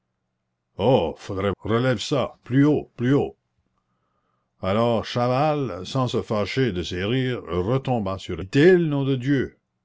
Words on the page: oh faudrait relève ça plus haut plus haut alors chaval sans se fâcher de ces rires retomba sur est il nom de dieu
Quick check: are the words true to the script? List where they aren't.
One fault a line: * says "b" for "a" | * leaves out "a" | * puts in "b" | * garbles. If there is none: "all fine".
all fine